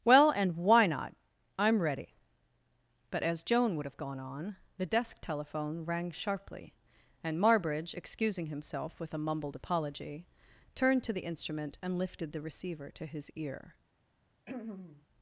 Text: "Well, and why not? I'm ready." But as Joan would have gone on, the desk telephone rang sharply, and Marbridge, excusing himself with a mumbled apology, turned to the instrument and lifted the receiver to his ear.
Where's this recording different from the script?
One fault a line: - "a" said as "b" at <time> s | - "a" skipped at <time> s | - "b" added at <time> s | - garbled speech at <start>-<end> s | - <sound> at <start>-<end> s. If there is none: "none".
- throat clearing at 14.5-15.1 s